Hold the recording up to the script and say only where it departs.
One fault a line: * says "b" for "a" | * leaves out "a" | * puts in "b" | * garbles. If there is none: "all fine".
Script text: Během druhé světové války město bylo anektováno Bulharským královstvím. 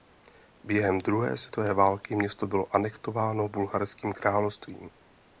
all fine